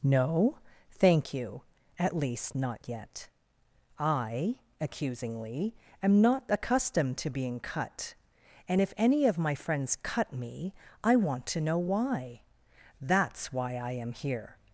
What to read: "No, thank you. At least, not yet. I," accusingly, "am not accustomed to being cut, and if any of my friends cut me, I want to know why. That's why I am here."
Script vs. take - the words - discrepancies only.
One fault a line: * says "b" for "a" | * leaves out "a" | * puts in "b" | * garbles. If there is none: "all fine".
all fine